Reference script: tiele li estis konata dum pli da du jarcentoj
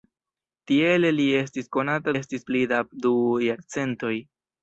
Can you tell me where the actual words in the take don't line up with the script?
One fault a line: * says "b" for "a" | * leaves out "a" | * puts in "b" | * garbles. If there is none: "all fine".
* says "estis" for "dum"